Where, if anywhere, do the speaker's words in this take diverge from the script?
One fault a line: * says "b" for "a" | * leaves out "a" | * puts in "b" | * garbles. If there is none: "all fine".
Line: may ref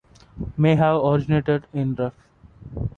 * puts in "have originated in"